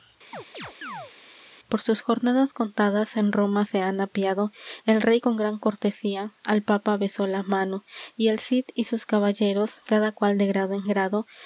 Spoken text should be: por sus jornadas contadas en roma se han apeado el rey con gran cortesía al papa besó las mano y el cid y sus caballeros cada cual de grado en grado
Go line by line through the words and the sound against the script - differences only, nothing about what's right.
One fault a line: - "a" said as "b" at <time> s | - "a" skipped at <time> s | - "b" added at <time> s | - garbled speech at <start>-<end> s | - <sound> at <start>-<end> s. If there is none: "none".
- chirp at 0.3-1.1 s
- "las" said as "la" at 7.3 s